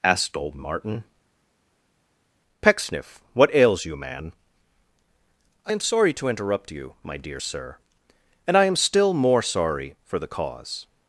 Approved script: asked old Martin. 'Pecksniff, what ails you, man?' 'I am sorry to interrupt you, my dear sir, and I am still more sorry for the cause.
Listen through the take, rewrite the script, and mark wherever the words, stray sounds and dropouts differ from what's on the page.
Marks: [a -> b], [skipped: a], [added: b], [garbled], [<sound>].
asked old Martin. 'Pecksniff, what ails you, man?' 'I am sorry to interrupt you, my dear sir, and I am still more sorry for the cause.